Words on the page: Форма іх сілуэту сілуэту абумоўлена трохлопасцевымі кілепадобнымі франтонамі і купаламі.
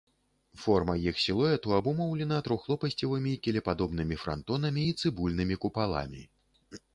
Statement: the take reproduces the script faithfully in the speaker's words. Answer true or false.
false